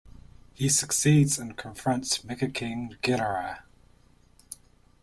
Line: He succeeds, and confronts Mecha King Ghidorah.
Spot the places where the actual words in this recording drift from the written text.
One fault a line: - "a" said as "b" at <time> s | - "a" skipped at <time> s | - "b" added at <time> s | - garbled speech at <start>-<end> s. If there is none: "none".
none